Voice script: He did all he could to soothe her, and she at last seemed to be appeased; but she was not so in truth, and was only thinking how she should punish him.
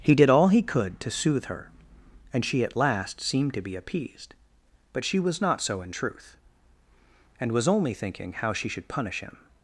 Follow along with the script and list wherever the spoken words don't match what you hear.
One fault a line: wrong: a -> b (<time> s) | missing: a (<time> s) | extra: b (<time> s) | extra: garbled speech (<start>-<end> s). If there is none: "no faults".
no faults